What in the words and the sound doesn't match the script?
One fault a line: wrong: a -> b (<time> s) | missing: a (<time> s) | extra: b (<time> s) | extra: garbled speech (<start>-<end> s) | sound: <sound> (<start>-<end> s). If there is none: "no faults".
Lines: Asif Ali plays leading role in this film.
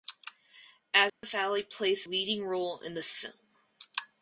sound: dropout (1.1-1.2 s)